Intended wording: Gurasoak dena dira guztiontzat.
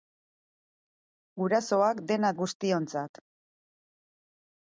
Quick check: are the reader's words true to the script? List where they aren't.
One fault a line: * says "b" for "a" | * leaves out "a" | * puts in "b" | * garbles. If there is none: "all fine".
* leaves out "dira"